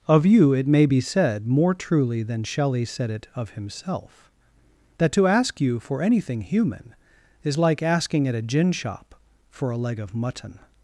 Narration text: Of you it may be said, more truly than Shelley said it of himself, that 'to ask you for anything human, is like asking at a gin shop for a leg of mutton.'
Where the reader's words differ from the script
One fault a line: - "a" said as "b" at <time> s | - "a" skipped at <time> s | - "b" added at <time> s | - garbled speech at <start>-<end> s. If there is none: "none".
none